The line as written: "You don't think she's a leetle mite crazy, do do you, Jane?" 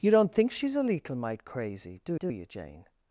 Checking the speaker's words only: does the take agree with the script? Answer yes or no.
yes